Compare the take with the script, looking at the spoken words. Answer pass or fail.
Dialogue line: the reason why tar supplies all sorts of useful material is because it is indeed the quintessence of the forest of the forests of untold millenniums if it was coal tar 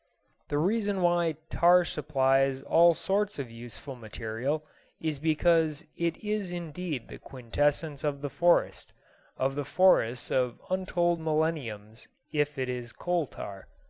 fail